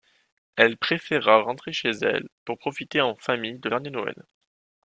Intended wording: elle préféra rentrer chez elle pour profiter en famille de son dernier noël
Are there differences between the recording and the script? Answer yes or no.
yes